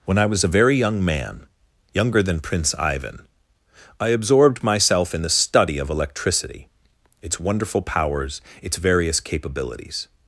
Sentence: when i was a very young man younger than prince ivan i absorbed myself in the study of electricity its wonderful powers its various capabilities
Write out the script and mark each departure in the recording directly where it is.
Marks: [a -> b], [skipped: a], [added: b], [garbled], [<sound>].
when i was a very young man younger than prince ivan i absorbed myself in the study of electricity its wonderful powers its various capabilities